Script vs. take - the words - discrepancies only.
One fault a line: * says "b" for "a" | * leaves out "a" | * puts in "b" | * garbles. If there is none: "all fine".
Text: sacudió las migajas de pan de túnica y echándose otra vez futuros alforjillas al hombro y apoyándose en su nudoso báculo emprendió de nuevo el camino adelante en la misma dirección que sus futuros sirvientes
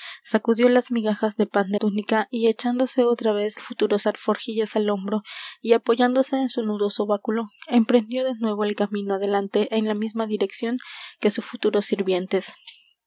all fine